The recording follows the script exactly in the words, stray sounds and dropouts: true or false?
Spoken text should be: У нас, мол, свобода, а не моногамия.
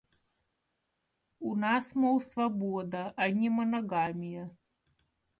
true